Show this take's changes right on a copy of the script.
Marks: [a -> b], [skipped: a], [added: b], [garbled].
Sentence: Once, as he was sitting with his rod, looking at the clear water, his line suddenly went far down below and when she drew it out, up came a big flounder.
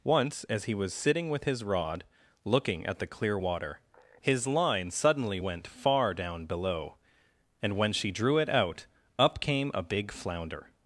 Once, as he was sitting with his rod, looking at the clear water, his line suddenly went far down below and when she drew it out, up came a big flounder.